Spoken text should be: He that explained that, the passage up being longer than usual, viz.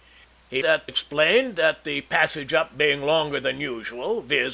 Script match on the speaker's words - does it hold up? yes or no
yes